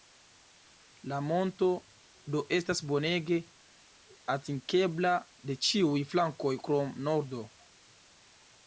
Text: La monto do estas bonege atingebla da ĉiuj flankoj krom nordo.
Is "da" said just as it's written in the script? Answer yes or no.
no